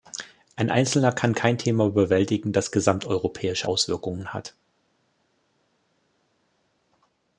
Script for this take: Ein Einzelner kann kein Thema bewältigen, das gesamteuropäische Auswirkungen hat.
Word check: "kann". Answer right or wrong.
right